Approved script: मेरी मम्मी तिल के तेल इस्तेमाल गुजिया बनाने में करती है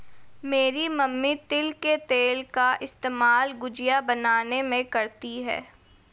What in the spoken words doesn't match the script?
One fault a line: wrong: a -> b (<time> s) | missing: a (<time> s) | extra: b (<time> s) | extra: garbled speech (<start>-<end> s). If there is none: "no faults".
extra: का (2.5 s)